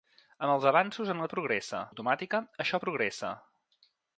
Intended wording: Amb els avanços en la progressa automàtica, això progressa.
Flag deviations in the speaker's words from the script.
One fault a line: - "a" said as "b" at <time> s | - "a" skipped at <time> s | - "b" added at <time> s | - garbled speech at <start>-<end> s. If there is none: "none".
none